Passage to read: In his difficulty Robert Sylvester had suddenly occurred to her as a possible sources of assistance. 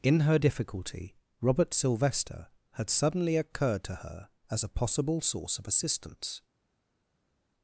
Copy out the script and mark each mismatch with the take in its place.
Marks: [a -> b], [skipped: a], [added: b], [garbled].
In [his -> her] difficulty Robert Sylvester had suddenly occurred to her as a possible [sources -> source] of assistance.